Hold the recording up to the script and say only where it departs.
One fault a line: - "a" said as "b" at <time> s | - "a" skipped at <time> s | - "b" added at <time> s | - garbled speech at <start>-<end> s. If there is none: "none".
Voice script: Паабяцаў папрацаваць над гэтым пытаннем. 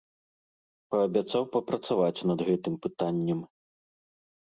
none